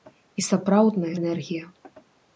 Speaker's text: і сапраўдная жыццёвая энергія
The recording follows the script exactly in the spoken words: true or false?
false